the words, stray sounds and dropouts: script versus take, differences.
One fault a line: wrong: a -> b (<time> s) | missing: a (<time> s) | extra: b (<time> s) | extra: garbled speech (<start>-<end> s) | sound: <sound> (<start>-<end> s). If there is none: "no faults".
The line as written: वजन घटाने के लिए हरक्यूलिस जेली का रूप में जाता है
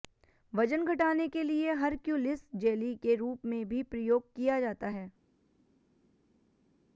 wrong: का -> के (3.0 s)
extra: भी प्रयोग किया (3.7 s)